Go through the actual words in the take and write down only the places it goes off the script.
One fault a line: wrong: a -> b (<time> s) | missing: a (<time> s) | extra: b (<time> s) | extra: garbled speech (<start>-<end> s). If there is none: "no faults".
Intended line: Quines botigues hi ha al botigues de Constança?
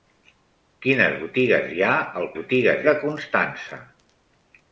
no faults